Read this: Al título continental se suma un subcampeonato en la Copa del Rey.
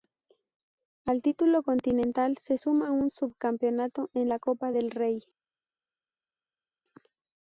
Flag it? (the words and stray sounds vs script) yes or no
no